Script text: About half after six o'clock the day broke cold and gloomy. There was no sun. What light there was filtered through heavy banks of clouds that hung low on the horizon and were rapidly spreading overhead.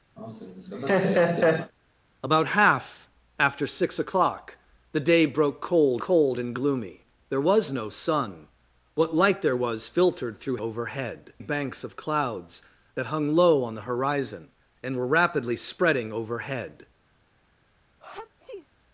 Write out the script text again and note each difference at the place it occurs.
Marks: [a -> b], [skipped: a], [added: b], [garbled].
About half after six o'clock the day broke cold [added: cold] and gloomy. There was no sun. What light there was filtered through [heavy -> overhead] banks of clouds that hung low on the horizon and were rapidly spreading overhead.